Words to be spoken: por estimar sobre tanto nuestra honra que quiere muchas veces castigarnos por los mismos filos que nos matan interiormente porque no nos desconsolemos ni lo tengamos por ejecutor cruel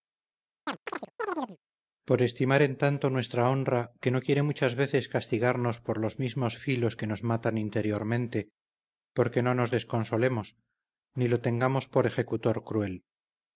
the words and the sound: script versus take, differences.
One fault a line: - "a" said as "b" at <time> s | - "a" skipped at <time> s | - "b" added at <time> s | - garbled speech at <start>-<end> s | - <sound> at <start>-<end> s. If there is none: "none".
- chirp at 0.7-1.6 s
- "sobre" said as "en" at 2.6 s
- "no" added at 4.1 s